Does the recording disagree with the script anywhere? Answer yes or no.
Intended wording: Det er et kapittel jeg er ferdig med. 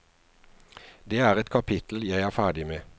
no